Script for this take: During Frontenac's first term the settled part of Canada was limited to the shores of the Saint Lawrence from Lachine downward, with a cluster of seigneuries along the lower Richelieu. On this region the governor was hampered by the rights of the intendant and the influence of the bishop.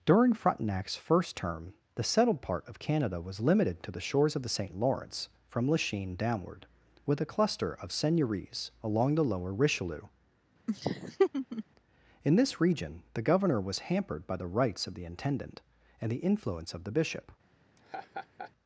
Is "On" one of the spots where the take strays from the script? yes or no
yes